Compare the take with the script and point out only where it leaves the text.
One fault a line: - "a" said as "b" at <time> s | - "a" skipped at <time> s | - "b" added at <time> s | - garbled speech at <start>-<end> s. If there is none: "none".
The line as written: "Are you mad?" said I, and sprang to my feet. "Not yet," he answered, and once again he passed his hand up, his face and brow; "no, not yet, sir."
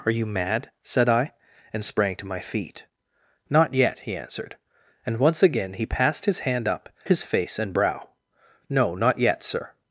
none